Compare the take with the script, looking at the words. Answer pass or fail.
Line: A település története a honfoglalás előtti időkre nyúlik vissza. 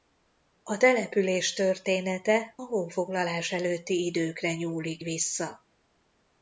pass